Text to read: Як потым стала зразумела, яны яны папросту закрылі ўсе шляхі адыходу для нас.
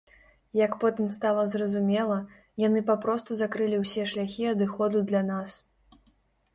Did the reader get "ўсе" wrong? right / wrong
right